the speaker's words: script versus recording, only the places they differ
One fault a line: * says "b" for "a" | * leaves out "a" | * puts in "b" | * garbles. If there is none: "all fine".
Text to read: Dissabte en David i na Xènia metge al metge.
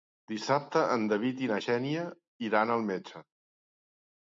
* says "iran" for "metge"